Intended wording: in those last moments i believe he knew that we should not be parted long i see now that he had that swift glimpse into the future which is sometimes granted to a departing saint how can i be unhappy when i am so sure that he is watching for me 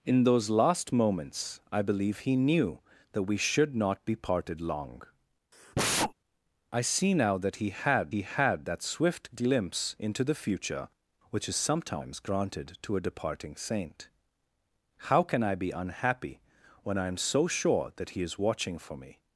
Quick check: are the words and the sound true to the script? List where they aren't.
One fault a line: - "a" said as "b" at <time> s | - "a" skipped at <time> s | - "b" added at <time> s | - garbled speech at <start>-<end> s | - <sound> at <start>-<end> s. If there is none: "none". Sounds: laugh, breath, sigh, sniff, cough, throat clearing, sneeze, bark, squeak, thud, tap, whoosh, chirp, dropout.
- sneeze at 5.5-6.1 s
- "he had" added at 8.1 s